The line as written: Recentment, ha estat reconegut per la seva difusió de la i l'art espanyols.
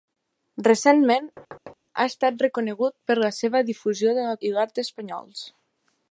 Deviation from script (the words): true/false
false